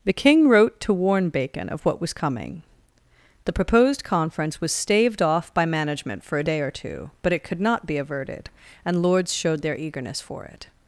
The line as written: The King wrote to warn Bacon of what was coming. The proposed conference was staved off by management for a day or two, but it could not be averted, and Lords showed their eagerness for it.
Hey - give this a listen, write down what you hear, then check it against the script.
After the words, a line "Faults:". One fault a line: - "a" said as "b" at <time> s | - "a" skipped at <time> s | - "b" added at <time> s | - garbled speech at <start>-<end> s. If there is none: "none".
The King wrote to warn Bacon of what was coming. The proposed conference was staved off by management for a day or two, but it could not be averted, and Lords showed their eagerness for it.
Faults:
none